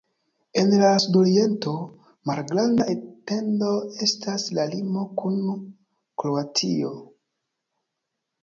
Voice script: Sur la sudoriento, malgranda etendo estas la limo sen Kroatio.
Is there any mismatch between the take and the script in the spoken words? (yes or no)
yes